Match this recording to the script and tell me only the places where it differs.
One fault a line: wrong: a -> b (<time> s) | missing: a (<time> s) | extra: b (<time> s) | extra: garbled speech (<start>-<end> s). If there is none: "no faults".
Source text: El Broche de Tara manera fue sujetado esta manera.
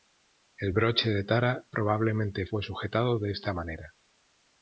wrong: manera -> probablemente (1.7 s)
extra: de (3.2 s)